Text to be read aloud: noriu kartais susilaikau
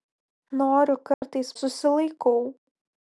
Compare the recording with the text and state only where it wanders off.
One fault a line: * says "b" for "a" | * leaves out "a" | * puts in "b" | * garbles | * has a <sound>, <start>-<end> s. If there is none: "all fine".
* has a dropout, 1.1-1.2 s